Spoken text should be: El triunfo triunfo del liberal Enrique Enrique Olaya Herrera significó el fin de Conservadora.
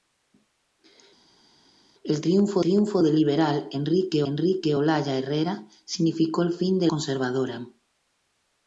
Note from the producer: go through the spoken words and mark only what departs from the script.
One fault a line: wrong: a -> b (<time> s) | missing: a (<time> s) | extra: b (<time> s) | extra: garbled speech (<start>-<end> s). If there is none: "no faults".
no faults